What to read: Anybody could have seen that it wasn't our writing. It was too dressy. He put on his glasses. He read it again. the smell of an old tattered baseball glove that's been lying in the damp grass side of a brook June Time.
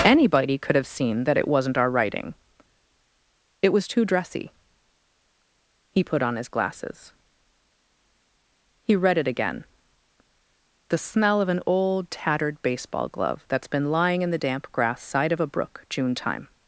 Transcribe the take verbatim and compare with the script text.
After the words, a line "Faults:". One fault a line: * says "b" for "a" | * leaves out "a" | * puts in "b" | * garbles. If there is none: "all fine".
Anybody could have seen that it wasn't our writing. It was too dressy. He put on his glasses. He read it again. the smell of an old tattered baseball glove that's been lying in the damp grass side of a brook June Time.
Faults:
all fine